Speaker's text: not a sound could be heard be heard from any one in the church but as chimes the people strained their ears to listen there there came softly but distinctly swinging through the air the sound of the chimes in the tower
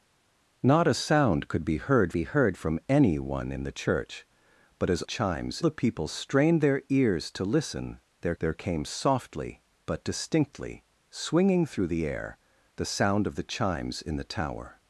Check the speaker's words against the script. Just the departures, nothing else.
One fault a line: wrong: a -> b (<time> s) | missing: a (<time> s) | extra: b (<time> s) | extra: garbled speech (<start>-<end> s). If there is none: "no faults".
no faults